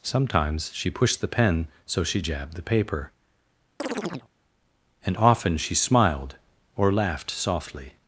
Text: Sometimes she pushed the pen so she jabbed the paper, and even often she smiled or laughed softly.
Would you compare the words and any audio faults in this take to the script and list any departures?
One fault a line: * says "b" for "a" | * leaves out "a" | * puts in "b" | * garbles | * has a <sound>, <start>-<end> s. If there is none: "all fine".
* has a chirp, 3.8-4.3 s
* leaves out "even"